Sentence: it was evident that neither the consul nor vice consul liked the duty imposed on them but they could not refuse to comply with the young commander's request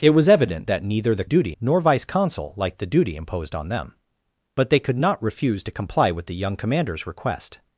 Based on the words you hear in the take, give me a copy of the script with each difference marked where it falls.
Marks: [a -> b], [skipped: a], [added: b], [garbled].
it was evident that neither the [consul -> duty] nor vice consul liked the duty imposed on them but they could not refuse to comply with the young commander's request